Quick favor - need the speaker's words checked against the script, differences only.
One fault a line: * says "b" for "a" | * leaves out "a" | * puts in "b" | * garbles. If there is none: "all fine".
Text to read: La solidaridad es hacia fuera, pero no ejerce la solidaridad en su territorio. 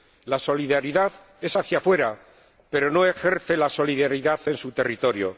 all fine